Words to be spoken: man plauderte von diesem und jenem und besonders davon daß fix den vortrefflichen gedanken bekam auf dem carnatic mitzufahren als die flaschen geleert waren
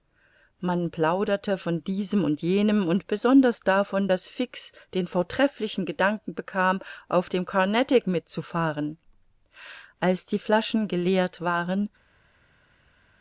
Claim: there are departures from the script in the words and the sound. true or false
false